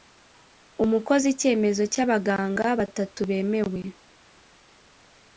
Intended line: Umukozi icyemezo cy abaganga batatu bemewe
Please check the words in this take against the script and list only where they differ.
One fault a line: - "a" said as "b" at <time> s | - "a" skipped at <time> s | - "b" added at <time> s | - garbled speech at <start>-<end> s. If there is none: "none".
none